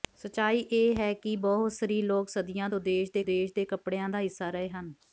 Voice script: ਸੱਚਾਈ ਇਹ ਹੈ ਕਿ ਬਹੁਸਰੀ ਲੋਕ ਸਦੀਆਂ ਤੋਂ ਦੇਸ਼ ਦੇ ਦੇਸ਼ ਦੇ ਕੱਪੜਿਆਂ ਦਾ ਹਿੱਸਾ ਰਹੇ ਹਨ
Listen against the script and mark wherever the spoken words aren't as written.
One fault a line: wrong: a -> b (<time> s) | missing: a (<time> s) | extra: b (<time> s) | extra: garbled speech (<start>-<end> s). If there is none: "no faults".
no faults